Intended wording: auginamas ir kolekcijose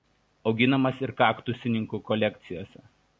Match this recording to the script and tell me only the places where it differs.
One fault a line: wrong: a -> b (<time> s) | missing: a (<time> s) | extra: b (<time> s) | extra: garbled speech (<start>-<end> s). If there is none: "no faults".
extra: kaktusininkų (1.2 s)